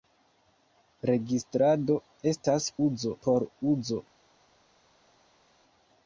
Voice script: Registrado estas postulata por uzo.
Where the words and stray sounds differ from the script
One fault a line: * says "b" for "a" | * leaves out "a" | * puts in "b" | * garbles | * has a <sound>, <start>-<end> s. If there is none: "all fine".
* says "uzo" for "postulata"